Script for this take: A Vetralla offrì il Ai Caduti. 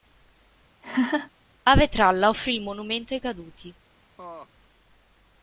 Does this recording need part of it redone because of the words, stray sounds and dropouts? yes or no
yes